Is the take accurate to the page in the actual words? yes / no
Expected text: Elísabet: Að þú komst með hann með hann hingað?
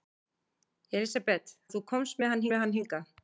yes